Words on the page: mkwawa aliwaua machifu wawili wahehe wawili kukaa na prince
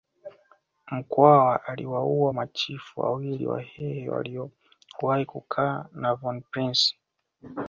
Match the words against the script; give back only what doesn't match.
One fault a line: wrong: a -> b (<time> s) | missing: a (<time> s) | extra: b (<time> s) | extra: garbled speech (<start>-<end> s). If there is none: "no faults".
wrong: wawili -> waliowahi (4.1 s)
extra: von (6.1 s)